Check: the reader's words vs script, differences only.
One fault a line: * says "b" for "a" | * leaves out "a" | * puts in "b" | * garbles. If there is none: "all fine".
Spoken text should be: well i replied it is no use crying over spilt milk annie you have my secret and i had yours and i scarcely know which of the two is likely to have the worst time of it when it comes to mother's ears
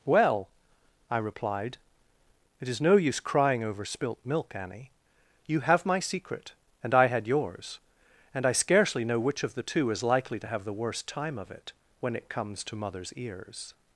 all fine